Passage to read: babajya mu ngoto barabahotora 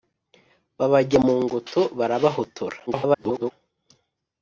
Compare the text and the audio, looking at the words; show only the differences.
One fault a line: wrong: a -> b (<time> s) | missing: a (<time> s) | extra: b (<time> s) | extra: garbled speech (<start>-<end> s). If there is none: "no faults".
extra: garbled speech (2.9-3.5 s)